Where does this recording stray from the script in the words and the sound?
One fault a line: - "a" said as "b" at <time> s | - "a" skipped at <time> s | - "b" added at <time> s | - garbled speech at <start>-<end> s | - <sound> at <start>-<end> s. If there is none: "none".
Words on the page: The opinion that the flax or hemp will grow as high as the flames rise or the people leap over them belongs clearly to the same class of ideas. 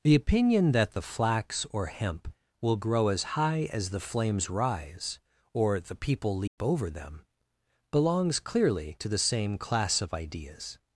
- dropout at 6.5-6.6 s